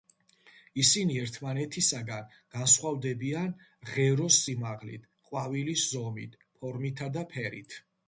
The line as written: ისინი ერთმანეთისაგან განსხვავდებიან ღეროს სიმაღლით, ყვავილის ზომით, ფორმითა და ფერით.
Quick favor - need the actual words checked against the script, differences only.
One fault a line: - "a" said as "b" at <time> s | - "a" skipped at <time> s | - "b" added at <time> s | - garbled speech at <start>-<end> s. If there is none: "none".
none